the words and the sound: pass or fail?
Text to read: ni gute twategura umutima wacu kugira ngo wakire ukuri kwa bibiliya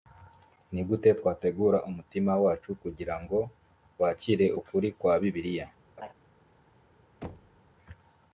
fail